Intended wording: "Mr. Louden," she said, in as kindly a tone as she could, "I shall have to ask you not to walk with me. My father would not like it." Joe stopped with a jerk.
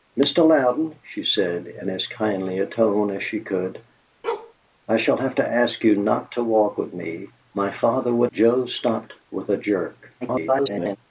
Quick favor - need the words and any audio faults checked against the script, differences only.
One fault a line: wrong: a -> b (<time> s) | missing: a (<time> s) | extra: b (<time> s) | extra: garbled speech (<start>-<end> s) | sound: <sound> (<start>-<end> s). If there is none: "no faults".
sound: bark (4.2-4.5 s)
missing: not like it (8.3 s)
extra: garbled speech (10.2-11.0 s)